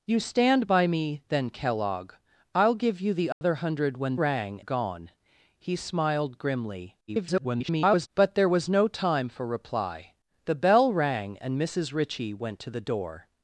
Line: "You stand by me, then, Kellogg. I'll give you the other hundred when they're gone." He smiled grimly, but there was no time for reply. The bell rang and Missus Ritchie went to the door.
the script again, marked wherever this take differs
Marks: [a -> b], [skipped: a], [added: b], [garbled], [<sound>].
"You stand by me, then, Kellogg. I'll give you the other [dropout] hundred when [they're -> rang] gone." He smiled grimly, [garbled] but there was no time for reply. The bell rang and Missus Ritchie went to the door.